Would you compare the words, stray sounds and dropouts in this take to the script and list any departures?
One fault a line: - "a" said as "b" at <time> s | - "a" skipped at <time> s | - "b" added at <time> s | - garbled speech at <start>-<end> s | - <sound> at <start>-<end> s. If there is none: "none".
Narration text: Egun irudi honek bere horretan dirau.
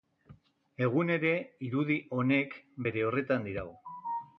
- "ere" added at 1.2 s